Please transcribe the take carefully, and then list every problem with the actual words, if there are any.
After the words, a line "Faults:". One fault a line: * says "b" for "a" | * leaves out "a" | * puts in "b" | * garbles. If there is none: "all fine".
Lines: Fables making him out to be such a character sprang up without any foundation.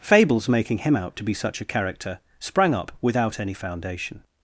Fables making him out to be such a character sprang up without any foundation.
Faults:
all fine